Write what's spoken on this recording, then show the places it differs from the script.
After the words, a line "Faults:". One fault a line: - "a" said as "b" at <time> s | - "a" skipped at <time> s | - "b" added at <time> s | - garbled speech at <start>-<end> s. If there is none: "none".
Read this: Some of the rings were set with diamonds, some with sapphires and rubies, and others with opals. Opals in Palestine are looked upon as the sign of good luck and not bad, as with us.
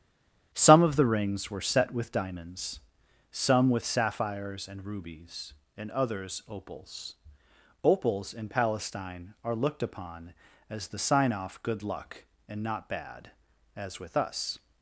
Some of the rings were set with diamonds, some with sapphires and rubies, and others opals. Opals in Palestine are looked upon as the sign off good luck and not bad, as with us.
Faults:
- "with" skipped at 6.4 s
- "of" said as "off" at 11.3 s